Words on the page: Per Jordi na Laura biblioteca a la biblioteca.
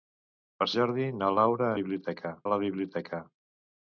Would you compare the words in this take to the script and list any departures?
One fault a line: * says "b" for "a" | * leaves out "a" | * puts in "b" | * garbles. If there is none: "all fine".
all fine